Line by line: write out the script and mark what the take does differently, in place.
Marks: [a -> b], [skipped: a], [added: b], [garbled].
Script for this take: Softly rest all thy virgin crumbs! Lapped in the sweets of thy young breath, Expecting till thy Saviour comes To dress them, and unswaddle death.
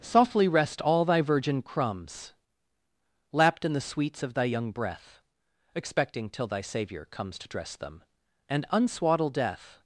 Softly rest all thy virgin crumbs! Lapped in the sweets of thy young breath, Expecting till thy Saviour comes To dress them, and unswaddle death.